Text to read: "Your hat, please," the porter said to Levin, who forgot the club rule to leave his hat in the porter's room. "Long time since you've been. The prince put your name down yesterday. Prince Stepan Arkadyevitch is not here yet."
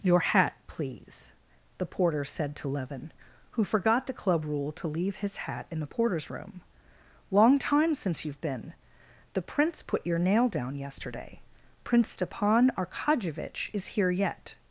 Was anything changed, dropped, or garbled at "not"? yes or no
yes